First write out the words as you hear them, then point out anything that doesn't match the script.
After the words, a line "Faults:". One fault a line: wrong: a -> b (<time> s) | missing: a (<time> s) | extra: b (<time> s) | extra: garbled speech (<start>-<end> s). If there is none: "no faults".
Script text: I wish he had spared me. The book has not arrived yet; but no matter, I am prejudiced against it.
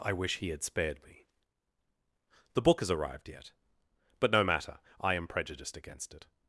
I wish he had spared me. The book has arrived yet; but no matter, I am prejudiced against it.
Faults:
missing: not (2.9 s)